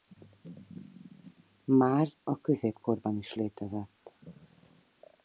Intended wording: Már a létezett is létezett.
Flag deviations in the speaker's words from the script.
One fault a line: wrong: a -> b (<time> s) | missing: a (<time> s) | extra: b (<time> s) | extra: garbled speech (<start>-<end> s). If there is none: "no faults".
wrong: létezett -> középkorban (2.4 s)